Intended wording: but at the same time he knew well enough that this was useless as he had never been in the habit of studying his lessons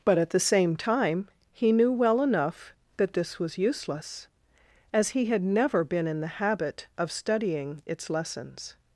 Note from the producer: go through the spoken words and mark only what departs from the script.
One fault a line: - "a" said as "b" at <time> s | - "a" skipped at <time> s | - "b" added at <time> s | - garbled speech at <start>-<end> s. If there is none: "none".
- "his" said as "its" at 7.8 s